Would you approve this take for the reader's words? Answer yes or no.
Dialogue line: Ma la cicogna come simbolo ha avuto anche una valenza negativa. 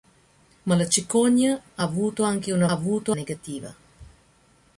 no